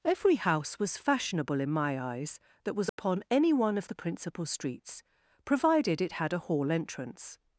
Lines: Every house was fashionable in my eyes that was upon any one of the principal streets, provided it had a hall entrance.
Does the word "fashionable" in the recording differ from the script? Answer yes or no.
no